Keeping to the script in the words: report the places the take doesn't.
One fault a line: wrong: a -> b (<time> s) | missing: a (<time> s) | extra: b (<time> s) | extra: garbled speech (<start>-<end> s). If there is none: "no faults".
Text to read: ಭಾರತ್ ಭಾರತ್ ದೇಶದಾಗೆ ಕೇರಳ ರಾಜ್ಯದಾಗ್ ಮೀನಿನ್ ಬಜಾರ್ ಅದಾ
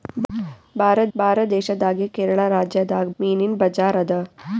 no faults